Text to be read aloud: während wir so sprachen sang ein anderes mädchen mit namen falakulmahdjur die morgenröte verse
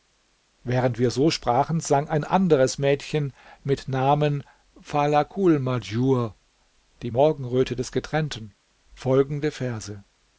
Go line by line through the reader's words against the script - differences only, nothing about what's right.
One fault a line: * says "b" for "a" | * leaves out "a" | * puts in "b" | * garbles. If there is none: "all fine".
* puts in "des getrennten folgende"